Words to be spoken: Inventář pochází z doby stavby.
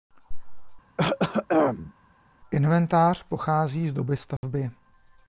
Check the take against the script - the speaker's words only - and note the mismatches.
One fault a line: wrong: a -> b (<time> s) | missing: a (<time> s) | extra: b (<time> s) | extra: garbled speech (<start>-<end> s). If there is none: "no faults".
no faults